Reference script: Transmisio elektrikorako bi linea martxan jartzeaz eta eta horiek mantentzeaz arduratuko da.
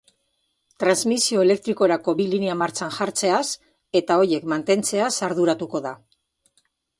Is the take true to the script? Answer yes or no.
no